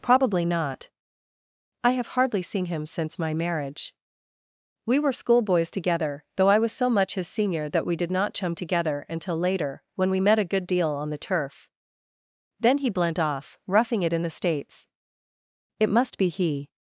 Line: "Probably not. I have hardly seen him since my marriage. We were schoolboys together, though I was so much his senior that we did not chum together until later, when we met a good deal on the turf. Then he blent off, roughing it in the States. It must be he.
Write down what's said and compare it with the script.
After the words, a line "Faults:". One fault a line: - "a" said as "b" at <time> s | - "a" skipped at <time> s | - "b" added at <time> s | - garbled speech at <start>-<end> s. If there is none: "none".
"Probably not. I have hardly seen him since my marriage. We were schoolboys together, though I was so much his senior that we did not chum together until later, when we met a good deal on the turf. Then he blent off, roughing it in the States. It must be he.
Faults:
none